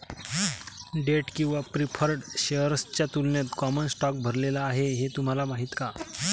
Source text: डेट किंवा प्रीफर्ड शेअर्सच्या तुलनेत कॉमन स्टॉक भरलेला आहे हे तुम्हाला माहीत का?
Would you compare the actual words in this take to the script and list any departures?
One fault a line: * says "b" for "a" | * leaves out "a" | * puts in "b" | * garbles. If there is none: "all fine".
all fine